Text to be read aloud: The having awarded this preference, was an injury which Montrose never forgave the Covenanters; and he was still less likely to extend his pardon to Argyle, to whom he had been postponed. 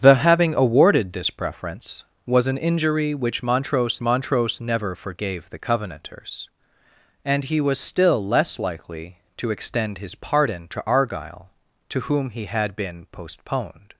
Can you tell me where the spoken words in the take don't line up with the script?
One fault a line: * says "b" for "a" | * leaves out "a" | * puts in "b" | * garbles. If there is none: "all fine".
* puts in "Montrose"